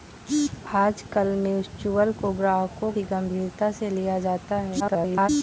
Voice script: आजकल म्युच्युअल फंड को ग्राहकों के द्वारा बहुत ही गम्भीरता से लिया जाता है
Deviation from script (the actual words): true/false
true